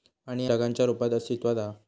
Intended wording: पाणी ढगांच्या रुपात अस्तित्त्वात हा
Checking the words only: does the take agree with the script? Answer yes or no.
yes